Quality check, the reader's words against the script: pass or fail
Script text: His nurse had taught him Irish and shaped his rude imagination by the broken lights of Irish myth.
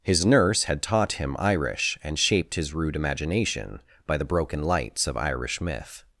pass